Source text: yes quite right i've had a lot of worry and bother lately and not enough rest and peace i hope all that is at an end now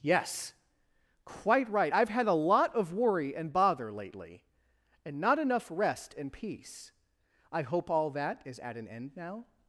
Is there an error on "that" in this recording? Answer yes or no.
no